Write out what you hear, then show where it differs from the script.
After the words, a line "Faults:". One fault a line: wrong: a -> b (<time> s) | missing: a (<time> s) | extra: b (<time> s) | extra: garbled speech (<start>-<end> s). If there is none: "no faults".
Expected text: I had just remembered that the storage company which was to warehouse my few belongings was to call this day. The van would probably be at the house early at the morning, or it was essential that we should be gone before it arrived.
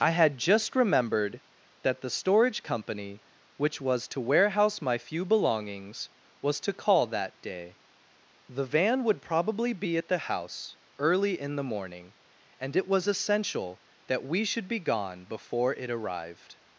I had just remembered that the storage company which was to warehouse my few belongings was to call that day. The van would probably be at the house early in the morning, and it was essential that we should be gone before it arrived.
Faults:
wrong: this -> that (7.0 s)
wrong: at -> in (11.4 s)
wrong: or -> and (12.6 s)